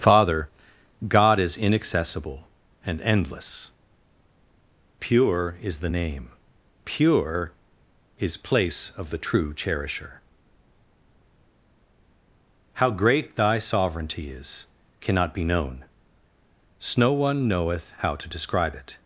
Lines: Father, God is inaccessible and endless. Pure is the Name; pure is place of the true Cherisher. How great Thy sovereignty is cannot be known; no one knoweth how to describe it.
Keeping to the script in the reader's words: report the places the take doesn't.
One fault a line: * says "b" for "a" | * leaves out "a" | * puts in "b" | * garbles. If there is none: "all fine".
all fine